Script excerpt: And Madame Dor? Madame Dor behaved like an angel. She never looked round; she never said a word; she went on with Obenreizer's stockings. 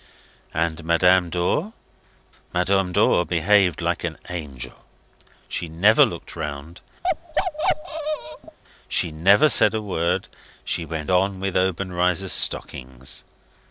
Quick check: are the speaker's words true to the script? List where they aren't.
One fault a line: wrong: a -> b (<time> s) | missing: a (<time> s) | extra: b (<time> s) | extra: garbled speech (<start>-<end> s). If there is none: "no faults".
no faults